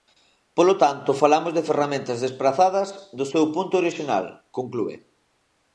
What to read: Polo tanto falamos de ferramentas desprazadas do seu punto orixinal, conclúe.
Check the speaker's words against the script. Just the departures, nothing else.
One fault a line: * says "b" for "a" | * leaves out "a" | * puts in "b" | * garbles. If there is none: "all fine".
all fine